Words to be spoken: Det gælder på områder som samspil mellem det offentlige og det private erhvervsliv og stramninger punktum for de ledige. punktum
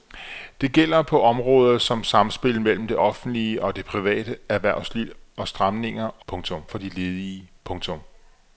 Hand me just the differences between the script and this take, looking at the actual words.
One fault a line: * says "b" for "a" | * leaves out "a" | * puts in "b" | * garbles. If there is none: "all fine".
all fine